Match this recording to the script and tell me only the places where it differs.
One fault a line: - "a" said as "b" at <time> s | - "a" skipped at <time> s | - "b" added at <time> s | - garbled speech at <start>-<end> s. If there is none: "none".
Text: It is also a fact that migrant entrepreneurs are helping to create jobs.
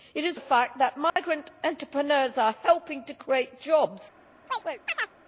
- "also" skipped at 0.4 s